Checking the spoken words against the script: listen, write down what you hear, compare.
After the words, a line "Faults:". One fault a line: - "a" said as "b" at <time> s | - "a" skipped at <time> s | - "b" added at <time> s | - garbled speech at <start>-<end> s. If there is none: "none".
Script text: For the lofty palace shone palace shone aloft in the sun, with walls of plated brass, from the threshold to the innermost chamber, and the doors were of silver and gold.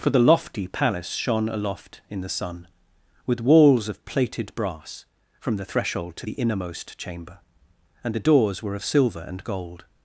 For the lofty palace shone aloft in the sun, with walls of plated brass, from the threshold to the innermost chamber, and the doors were of silver and gold.
Faults:
- "palace shone" skipped at 1.5 s